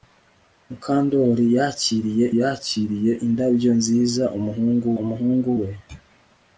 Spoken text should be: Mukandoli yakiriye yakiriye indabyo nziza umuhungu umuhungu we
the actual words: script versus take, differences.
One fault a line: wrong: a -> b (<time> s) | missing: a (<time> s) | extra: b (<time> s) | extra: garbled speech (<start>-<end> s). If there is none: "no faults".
no faults